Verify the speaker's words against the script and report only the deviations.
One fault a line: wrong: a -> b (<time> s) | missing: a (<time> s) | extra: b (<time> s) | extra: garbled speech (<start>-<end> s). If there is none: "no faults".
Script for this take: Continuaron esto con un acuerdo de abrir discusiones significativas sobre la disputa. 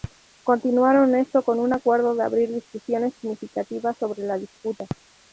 no faults